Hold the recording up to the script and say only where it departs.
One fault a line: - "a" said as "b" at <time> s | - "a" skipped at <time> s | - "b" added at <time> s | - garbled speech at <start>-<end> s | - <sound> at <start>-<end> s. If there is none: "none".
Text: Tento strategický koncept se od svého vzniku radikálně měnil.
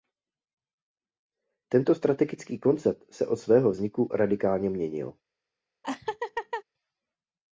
- laugh at 5.8-6.6 s